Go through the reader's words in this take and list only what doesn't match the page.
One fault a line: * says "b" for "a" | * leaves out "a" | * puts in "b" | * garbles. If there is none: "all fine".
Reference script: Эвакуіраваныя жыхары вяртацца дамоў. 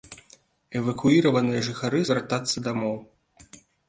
all fine